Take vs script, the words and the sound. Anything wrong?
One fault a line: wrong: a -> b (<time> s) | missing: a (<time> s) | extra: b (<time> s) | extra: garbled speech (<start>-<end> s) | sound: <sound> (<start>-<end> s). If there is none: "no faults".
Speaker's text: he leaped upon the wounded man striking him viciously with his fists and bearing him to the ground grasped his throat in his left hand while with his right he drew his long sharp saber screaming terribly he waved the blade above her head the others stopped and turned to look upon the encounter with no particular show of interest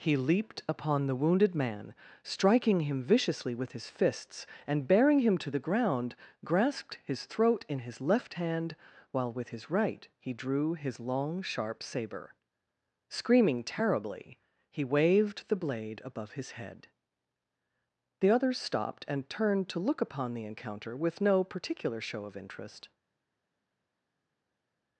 wrong: her -> his (16.3 s)